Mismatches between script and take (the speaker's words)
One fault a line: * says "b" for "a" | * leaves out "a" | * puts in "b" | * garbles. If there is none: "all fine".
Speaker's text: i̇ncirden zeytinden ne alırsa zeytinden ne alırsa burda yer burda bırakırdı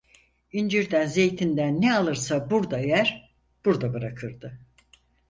* leaves out "zeytinden ne alırsa"